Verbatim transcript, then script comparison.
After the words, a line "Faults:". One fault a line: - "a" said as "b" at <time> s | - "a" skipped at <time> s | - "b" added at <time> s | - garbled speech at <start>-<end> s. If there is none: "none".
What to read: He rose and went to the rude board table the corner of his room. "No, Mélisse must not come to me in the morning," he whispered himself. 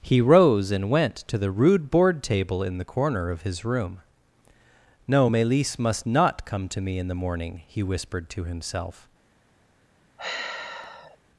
He rose and went to the rude board table in the corner of his room. "No, Mélisse must not come to me in the morning," he whispered to himself.
Faults:
- "in" added at 2.6 s
- "to" added at 8.3 s